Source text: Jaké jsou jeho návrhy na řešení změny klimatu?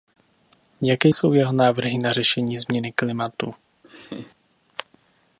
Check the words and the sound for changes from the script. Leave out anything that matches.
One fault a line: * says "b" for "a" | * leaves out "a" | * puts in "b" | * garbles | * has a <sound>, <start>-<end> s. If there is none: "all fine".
* has a laugh, 3.8-4.4 s